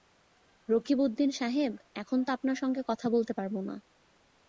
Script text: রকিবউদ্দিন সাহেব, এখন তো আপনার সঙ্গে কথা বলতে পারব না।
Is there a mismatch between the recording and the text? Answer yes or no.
no